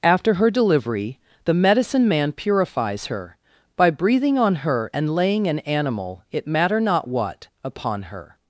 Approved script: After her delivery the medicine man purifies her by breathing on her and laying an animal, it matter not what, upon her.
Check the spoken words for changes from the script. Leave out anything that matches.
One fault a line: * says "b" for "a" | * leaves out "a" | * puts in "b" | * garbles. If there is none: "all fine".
all fine